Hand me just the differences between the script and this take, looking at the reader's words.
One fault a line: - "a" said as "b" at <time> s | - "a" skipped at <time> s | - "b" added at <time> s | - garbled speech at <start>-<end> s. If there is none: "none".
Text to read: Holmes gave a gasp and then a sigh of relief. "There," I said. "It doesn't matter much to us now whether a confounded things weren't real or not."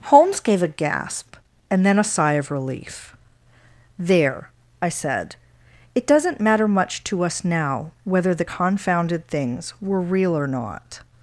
- "a" said as "the" at 8.3 s
- "weren't" said as "were" at 9.8 s